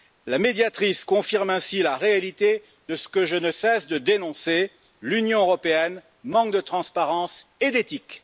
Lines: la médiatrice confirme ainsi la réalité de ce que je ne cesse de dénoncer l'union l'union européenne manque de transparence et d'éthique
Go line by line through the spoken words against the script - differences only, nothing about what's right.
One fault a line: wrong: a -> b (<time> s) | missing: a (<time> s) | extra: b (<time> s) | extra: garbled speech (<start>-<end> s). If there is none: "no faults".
missing: l'union (5.4 s)